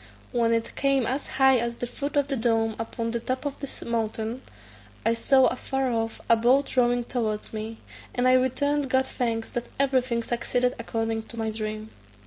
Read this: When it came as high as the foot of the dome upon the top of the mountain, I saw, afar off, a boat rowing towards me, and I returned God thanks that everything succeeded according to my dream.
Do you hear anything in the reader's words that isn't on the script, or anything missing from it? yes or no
no